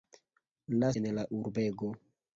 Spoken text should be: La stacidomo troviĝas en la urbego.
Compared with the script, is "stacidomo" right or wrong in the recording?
wrong